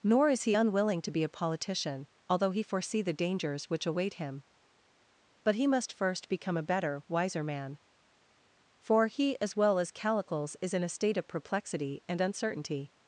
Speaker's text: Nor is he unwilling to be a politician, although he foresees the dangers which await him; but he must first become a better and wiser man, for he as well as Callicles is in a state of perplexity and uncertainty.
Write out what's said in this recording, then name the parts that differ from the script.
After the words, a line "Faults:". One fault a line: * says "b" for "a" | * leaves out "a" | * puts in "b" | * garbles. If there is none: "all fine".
Nor is he unwilling to be a politician, although he foresee the dangers which await him; but he must first become a better wiser man, for he as well as Callicles is in a state of perplexity and uncertainty.
Faults:
* says "foresee" for "foresees"
* leaves out "and"